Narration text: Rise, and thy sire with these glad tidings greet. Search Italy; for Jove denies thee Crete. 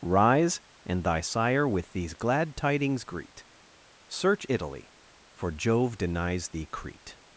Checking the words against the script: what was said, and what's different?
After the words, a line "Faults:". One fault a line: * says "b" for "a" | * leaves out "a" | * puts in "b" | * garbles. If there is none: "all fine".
Rise, and thy sire with these glad tidings greet. Search Italy; for Jove denies thee Crete.
Faults:
all fine